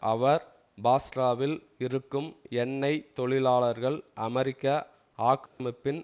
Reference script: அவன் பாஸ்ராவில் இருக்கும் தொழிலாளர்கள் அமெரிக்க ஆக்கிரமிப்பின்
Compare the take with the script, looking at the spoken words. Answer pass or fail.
fail